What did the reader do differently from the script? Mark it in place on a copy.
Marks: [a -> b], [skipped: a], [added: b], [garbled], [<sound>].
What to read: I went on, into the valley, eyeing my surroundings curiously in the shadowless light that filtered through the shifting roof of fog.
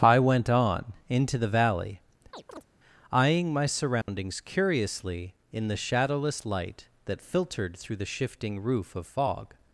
I went on, into the valley, [chirp] eyeing my surroundings [dropout] curiously in the shadowless light that filtered through the shifting roof of fog.